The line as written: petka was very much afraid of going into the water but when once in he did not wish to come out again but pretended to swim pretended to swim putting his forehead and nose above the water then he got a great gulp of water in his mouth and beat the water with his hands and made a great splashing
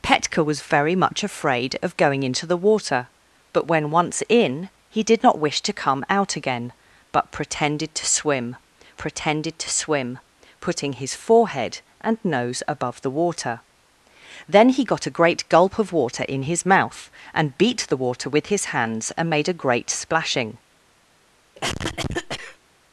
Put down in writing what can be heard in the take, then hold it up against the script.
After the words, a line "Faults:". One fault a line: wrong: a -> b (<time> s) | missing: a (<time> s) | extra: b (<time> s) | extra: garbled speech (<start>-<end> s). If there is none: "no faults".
petka was very much afraid of going into the water but when once in he did not wish to come out again but pretended to swim pretended to swim putting his forehead and nose above the water then he got a great gulp of water in his mouth and beat the water with his hands and made a great splashing
Faults:
no faults